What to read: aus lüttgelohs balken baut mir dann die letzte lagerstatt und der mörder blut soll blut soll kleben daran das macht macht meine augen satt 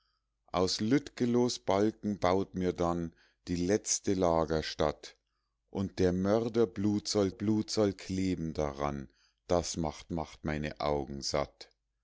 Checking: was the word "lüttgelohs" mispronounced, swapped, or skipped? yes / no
no